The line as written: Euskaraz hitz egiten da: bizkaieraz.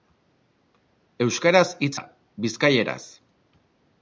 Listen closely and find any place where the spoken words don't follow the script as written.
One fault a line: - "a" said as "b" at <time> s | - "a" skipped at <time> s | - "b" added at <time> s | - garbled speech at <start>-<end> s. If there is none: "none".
- "egiten" skipped at 1.9 s